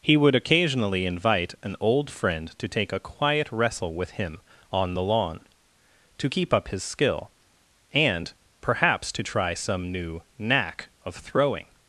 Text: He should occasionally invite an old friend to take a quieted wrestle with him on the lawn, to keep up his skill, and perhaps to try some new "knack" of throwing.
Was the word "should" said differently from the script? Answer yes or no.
yes